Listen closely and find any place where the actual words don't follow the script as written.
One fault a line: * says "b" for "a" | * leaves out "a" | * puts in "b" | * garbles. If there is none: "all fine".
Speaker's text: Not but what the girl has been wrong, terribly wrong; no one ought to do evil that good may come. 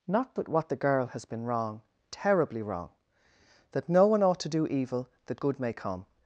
* puts in "that"